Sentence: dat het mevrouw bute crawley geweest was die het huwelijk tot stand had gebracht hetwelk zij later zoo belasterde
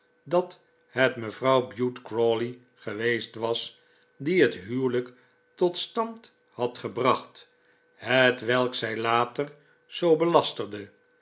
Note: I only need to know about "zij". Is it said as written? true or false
true